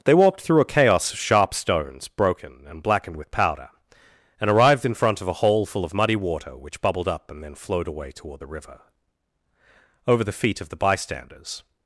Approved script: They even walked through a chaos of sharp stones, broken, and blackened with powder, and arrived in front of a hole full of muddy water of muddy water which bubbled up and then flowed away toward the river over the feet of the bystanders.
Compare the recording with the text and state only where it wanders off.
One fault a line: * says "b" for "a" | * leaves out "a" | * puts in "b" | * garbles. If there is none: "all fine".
* leaves out "even"
* leaves out "of muddy water"